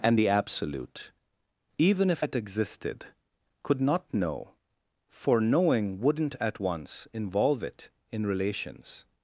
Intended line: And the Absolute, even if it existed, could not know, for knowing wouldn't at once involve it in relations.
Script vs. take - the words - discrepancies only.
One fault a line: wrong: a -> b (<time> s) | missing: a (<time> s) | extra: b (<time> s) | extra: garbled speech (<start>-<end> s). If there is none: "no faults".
no faults